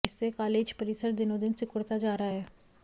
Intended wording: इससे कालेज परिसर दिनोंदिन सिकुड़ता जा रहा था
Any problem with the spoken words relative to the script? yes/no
yes